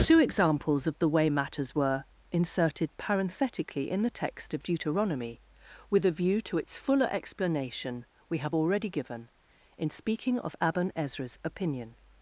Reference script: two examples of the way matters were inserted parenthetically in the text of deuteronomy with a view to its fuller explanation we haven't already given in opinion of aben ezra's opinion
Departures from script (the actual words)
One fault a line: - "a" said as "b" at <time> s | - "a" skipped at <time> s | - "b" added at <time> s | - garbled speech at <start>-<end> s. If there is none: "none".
- "haven't" said as "have" at 8.4 s
- "opinion" said as "speaking" at 9.9 s